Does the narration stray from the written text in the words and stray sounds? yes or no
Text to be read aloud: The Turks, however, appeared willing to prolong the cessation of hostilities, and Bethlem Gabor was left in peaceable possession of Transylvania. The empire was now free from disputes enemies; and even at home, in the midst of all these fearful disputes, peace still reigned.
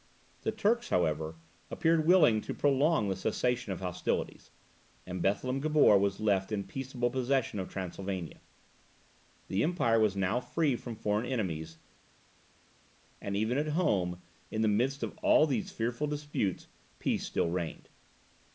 yes